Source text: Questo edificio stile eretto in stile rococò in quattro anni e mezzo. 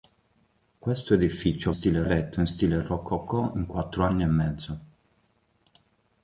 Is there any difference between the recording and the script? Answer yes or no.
no